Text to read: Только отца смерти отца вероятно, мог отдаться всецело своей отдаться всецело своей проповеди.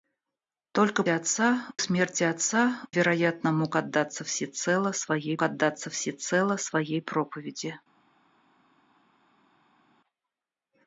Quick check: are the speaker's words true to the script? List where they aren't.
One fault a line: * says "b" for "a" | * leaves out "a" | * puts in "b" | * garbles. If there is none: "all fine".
all fine